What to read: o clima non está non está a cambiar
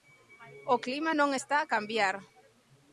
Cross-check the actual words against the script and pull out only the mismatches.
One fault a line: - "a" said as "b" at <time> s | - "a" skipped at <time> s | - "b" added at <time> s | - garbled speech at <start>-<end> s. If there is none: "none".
- "non está" skipped at 1.6 s